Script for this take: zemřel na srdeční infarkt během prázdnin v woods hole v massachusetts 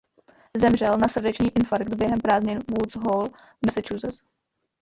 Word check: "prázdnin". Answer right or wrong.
right